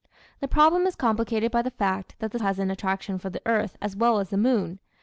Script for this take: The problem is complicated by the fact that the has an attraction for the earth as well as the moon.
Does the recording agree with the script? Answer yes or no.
yes